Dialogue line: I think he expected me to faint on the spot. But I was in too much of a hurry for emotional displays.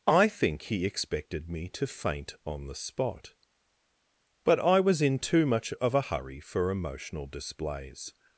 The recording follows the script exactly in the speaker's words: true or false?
true